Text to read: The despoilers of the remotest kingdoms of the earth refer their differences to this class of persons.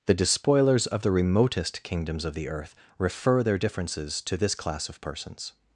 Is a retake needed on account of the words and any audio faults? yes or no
no